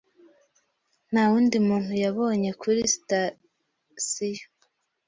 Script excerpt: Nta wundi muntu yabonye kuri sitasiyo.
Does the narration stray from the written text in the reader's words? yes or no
no